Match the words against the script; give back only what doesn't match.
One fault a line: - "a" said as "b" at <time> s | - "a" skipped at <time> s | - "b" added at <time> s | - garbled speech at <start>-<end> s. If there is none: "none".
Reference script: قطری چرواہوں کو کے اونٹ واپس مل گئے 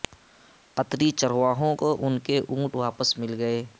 - "ان" added at 2.1 s